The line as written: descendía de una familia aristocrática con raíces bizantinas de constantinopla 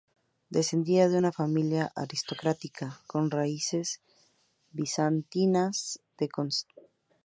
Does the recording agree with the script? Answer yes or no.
yes